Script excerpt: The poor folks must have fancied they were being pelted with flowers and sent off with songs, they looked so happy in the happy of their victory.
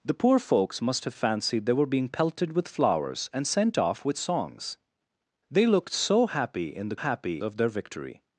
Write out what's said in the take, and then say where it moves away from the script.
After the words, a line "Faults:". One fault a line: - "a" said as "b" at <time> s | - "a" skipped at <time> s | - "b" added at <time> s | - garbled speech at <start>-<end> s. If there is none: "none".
The poor folks must have fancied they were being pelted with flowers and sent off with songs, they looked so happy in the happy of their victory.
Faults:
none